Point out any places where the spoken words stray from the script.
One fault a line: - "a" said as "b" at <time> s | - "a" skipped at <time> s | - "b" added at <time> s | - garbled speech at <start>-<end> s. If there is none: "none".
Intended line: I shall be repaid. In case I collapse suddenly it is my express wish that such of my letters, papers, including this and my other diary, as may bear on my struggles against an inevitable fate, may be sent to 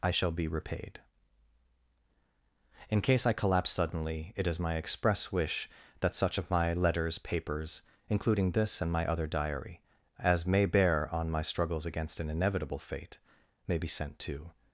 none